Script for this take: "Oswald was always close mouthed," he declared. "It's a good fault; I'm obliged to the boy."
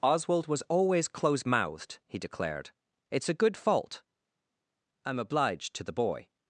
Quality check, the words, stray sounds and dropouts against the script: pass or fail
pass